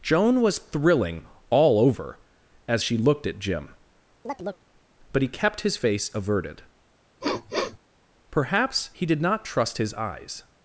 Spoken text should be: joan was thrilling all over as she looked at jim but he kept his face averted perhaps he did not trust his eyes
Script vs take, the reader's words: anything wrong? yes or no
no